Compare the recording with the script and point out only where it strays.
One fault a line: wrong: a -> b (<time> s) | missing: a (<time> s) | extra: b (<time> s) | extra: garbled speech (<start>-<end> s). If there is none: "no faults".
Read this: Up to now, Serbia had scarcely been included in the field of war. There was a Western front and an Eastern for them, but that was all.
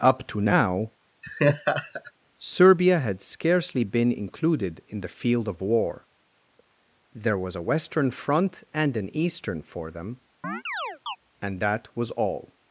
wrong: but -> and (11.4 s)